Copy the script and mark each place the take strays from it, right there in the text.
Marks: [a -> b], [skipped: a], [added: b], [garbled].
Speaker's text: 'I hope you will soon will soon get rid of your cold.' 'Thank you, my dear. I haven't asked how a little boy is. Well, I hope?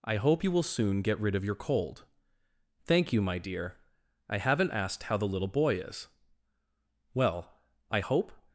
'I hope you will soon [skipped: will soon] get rid of your cold.' 'Thank you, my dear. I haven't asked how [a -> the] little boy is. Well, I hope?